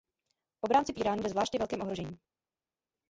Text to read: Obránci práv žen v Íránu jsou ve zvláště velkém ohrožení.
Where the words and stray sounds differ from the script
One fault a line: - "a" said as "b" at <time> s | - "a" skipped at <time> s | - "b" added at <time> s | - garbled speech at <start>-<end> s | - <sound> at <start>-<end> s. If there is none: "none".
- "práv žen" skipped at 0.9 s
- "jsou" skipped at 1.2 s